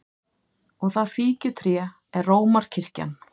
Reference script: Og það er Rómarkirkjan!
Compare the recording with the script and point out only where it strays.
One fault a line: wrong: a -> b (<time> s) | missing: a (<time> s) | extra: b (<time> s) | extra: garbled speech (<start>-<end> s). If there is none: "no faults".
extra: fíkjutré (1.1 s)